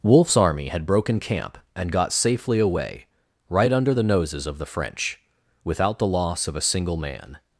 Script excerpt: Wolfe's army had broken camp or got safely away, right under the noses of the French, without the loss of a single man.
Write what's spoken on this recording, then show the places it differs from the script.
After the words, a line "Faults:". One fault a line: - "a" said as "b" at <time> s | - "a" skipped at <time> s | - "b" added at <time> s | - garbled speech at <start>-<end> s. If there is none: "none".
Wolfe's army had broken camp and got safely away, right under the noses of the French, without the loss of a single man.
Faults:
- "or" said as "and" at 1.8 s